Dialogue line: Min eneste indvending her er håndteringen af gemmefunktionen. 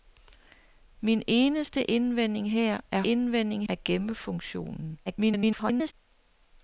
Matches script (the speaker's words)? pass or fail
fail